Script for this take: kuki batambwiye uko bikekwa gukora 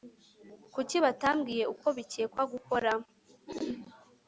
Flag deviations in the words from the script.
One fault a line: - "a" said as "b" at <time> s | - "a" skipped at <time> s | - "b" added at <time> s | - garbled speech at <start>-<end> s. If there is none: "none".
none